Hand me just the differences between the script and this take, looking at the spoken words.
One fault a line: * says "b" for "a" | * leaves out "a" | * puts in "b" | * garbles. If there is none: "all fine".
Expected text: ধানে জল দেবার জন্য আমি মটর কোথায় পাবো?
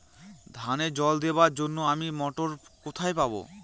all fine